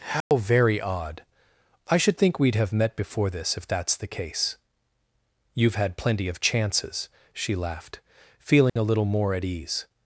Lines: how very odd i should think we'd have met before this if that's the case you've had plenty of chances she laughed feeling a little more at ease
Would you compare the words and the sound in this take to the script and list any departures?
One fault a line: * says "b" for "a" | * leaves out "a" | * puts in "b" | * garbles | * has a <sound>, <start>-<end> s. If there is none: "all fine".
* has a dropout, 0.2-0.3 s
* has a dropout, 8.7-8.8 s